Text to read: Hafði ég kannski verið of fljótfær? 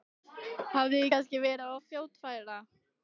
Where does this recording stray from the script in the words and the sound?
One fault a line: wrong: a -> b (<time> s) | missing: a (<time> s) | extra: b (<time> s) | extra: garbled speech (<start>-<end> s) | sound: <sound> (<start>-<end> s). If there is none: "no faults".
no faults